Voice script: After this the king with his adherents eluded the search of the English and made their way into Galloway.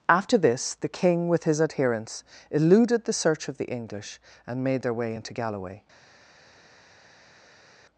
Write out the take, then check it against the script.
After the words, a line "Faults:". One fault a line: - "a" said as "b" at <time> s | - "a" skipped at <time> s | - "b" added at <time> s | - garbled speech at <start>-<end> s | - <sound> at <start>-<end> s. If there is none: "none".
After this the king with his adherents eluded the search of the English and made their way into Galloway.
Faults:
none